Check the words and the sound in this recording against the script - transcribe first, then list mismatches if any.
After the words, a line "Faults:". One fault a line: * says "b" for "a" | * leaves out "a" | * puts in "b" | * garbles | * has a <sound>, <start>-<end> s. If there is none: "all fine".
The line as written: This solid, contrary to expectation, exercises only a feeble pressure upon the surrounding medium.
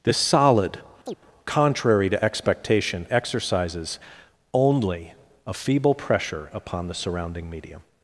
This solid, contrary to expectation, exercises only a feeble pressure upon the surrounding medium.
Faults:
* has a chirp, 1.1-1.2 s